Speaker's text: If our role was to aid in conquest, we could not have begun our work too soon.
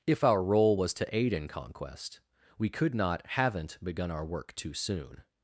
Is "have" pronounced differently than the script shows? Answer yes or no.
yes